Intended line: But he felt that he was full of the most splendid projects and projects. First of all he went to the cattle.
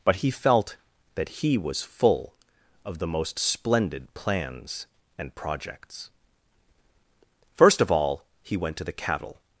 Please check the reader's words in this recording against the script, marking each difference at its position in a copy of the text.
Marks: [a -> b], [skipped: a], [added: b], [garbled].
But he felt that he was full of the most splendid [projects -> plans] and projects. First of all he went to the cattle.